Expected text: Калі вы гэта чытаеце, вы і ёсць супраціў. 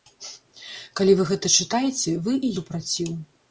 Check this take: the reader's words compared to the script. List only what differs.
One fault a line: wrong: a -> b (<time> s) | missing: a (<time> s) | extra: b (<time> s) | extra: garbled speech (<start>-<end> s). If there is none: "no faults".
missing: ёсць (2.5 s)